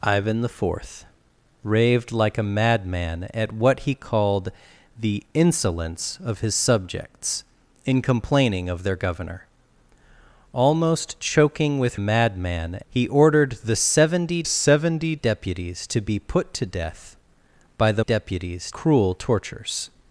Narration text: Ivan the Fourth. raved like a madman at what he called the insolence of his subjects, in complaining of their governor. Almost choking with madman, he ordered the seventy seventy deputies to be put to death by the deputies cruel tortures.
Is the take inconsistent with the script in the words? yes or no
no